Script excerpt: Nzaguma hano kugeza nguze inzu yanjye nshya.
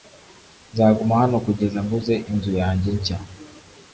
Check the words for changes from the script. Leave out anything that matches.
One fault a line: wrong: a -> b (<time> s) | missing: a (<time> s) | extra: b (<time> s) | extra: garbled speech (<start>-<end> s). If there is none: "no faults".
no faults